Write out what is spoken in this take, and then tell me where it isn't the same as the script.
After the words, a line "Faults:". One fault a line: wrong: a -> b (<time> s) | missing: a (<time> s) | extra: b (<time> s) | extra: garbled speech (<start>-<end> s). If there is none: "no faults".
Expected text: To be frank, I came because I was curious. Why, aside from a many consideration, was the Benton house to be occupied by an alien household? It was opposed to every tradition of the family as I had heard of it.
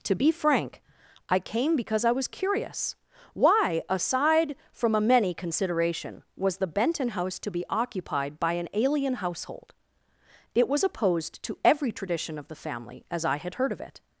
To be frank, I came because I was curious. Why, aside from a many consideration, was the Benton house to be occupied by an alien household? It was opposed to every tradition of the family as I had heard of it.
Faults:
no faults